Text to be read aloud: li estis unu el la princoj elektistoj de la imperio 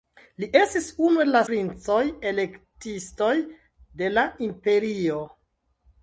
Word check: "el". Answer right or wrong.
right